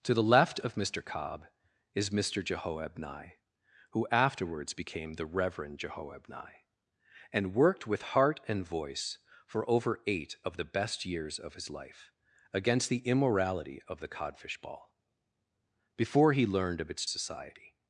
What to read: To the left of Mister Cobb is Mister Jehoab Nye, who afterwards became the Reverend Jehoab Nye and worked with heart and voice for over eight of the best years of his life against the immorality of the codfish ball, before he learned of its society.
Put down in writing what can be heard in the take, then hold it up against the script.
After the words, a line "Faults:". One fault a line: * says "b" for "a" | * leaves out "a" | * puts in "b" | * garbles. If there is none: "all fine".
To the left of Mister Cobb is Mister Jehoab Nye, who afterwards became the Reverend Jehoab Nye and worked with heart and voice for over eight of the best years of his life against the immorality of the codfish ball, before he learned of its society.
Faults:
all fine